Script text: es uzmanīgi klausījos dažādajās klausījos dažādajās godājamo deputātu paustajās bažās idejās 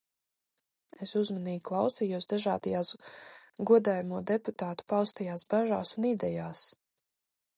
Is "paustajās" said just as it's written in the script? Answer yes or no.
yes